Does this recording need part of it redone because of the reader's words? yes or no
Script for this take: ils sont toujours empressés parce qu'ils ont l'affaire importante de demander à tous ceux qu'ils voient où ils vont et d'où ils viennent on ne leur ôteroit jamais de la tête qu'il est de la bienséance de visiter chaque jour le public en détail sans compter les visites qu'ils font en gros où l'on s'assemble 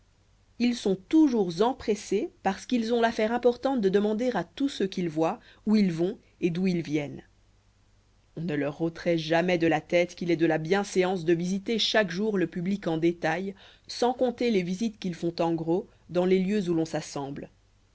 yes